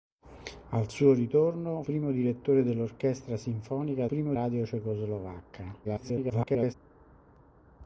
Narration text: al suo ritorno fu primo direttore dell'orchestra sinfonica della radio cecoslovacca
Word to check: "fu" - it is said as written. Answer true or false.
false